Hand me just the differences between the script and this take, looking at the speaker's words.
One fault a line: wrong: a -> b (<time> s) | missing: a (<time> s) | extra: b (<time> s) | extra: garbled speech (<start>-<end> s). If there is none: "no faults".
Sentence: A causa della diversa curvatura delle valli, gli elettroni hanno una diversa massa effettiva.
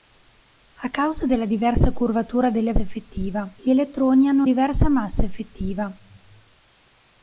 wrong: valli -> effettiva (2.8 s)
missing: una (4.4 s)